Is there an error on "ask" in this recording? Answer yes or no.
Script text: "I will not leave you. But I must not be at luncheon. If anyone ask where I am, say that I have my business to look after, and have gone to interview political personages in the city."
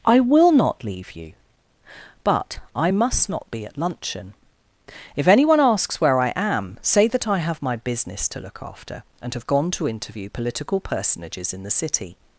yes